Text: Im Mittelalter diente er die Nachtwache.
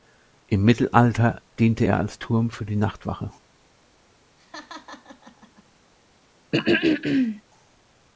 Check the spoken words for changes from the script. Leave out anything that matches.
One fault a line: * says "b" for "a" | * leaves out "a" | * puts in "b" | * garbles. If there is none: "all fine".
* puts in "als Turm für"